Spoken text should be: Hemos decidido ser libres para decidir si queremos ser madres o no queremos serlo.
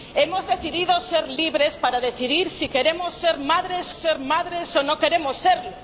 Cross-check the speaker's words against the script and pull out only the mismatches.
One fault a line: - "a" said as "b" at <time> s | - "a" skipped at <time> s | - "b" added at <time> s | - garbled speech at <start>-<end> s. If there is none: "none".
- "ser madres" added at 3.9 s